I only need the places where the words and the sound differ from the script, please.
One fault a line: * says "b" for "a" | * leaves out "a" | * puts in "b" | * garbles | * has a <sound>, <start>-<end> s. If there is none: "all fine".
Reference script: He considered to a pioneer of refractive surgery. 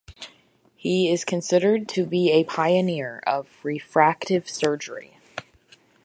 * puts in "is"
* puts in "be"